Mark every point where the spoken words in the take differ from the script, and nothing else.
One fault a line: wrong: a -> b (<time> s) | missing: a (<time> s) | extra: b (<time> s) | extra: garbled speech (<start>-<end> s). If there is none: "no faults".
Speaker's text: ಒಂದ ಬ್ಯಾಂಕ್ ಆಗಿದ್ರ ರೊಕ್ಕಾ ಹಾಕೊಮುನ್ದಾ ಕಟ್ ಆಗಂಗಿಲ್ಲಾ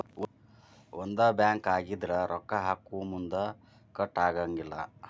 no faults